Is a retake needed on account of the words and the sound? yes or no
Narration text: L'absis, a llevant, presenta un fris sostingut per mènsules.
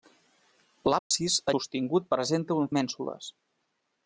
yes